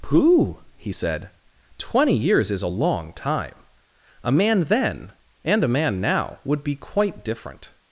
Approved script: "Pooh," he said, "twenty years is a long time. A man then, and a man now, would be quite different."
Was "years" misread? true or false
false